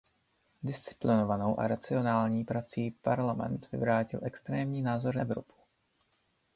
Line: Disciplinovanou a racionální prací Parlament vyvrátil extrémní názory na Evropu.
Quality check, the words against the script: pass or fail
fail